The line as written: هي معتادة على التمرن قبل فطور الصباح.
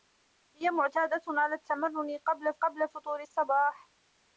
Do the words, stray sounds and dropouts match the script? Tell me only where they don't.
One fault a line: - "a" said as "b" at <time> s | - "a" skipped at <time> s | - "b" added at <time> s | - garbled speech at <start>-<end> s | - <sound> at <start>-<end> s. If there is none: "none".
- "قبل" added at 2.5 s